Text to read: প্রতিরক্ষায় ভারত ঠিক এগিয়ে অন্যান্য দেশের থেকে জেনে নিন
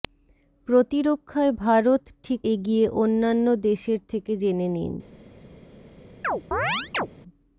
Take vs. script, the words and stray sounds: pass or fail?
fail